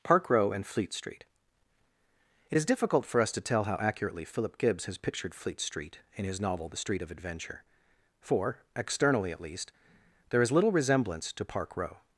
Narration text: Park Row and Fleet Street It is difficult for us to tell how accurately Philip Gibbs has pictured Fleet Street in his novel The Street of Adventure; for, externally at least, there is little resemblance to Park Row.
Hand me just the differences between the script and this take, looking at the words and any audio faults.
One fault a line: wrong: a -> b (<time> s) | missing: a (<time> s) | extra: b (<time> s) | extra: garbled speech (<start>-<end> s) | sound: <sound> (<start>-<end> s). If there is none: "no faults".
no faults